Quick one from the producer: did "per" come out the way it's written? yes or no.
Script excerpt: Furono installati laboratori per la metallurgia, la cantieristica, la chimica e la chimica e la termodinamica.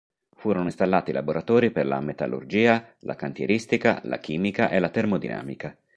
yes